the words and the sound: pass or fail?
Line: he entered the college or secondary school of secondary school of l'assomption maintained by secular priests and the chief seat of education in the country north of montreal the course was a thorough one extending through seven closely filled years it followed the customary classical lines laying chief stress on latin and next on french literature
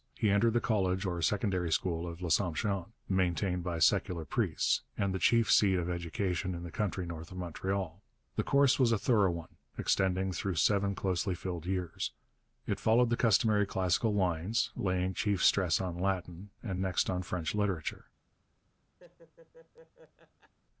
fail